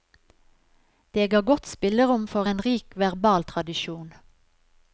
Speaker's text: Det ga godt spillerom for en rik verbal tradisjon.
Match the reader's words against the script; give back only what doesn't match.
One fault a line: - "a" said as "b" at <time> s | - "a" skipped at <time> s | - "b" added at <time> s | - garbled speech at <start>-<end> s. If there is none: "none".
none